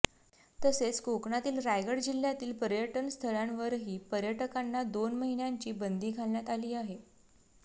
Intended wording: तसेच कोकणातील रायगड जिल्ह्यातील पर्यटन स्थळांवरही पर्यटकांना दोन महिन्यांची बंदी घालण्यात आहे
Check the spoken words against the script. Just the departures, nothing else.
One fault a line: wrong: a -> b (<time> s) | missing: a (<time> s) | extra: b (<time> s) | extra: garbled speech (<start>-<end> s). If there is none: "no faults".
extra: आली (6.5 s)